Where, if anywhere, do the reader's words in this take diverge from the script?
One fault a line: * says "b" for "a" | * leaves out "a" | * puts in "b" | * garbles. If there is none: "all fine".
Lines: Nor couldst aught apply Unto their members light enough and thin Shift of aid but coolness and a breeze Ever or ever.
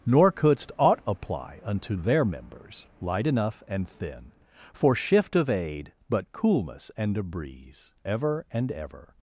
* puts in "For"
* says "and" for "or"